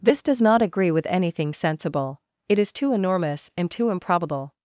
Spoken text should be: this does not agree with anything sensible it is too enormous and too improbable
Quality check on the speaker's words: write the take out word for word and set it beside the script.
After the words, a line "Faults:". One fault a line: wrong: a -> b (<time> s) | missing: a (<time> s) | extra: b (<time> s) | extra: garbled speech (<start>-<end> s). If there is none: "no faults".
this does not agree with anything sensible it is too enormous and too improbable
Faults:
no faults